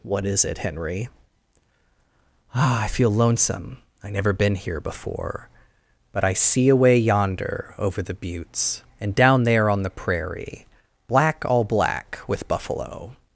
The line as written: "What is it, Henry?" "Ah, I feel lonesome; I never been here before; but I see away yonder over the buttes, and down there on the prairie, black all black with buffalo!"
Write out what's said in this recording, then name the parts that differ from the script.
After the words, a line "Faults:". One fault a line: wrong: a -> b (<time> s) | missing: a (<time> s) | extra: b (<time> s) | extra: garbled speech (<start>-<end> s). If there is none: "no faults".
"What is it, Henry?" "Ah, I feel lonesome; I never been here before; but I see away yonder over the buttes, and down there on the prairie, black all black with buffalo!"
Faults:
no faults